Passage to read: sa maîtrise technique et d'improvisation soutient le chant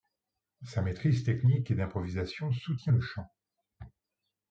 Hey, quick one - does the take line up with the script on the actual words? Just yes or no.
yes